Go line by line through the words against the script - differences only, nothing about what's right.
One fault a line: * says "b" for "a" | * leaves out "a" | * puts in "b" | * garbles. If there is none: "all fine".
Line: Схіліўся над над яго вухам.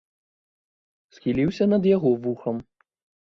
* leaves out "над"